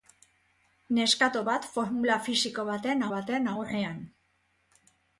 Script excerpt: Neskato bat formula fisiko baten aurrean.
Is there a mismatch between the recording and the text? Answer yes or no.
yes